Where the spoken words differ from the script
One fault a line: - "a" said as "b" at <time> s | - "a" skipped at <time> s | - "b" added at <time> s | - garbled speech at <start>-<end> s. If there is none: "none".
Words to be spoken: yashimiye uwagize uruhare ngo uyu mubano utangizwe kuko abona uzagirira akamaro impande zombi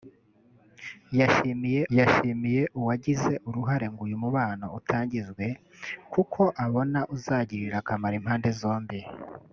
- "yashimiye" added at 2.0 s